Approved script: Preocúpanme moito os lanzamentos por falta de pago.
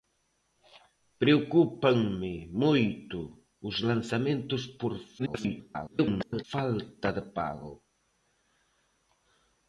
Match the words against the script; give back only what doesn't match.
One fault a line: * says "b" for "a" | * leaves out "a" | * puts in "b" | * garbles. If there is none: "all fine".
* garbles